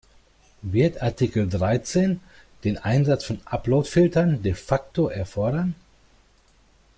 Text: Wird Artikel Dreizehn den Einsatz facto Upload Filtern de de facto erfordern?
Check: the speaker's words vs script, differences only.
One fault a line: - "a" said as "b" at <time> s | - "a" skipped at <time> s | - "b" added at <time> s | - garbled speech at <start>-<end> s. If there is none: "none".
- "facto" said as "von" at 3.3 s
- "de" skipped at 4.5 s